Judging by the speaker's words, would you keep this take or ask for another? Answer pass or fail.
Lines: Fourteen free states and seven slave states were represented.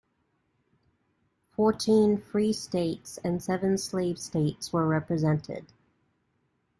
pass